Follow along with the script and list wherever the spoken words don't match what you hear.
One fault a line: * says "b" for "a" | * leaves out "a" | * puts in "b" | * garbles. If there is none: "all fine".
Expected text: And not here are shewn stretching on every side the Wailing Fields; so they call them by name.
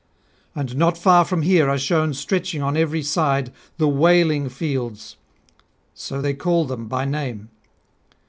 * puts in "far from"